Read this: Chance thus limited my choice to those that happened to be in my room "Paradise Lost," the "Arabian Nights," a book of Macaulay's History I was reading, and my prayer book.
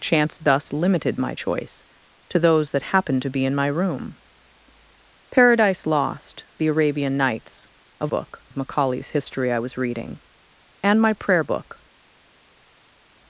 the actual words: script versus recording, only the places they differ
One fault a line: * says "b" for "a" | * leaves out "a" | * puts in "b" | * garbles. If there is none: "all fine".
all fine